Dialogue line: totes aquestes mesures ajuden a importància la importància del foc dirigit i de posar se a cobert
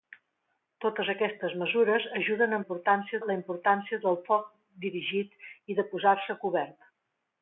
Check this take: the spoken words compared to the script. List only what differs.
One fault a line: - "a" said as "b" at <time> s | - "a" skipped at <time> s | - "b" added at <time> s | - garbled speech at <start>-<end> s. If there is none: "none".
none